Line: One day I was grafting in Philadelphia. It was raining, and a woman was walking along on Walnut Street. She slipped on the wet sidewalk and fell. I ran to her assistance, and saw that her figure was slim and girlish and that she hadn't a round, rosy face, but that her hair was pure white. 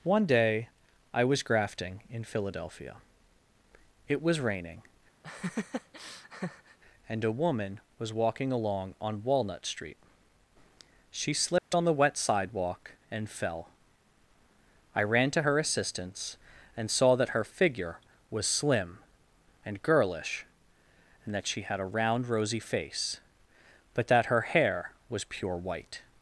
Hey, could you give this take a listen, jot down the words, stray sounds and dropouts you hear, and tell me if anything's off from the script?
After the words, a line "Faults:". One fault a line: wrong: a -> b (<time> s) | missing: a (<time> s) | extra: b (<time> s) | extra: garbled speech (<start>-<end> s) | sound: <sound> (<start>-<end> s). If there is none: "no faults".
One day I was grafting in Philadelphia. It was raining, and a woman was walking along on Walnut Street. She slipped on the wet sidewalk and fell. I ran to her assistance, and saw that her figure was slim and girlish and that she had a round, rosy face, but that her hair was pure white.
Faults:
sound: laugh (5.2-6.8 s)
sound: dropout (11.6-11.7 s)
wrong: hadn't -> had (21.6 s)